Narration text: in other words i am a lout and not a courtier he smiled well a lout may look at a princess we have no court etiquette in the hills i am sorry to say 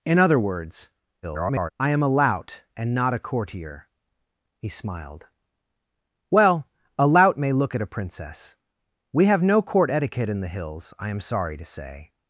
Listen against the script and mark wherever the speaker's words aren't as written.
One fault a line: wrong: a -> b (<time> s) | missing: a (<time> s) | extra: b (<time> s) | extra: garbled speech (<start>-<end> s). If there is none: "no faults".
extra: garbled speech (1.2-1.7 s)